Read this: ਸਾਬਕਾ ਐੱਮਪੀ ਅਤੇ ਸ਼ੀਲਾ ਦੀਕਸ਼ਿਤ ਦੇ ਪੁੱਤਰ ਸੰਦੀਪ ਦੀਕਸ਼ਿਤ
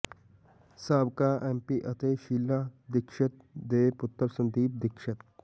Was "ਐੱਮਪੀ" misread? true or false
false